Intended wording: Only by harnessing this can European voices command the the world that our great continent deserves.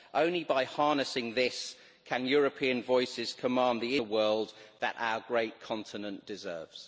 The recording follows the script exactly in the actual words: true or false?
true